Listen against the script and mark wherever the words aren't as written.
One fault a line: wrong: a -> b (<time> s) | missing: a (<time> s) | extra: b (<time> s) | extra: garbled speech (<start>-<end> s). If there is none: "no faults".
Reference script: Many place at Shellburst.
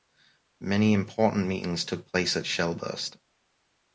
extra: important meetings took (0.9 s)